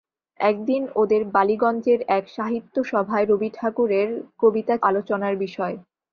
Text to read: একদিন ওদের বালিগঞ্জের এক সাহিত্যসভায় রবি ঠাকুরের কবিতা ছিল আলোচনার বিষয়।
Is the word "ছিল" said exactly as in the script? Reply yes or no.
no